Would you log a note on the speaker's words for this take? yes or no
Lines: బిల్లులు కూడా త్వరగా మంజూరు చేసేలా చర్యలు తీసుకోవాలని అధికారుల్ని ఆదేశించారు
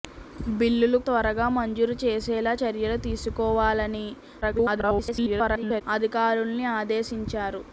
yes